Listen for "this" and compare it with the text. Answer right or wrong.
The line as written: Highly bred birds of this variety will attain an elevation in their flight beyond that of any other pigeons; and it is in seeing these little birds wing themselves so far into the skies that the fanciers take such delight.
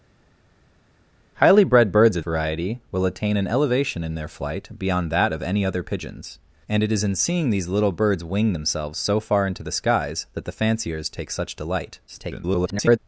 wrong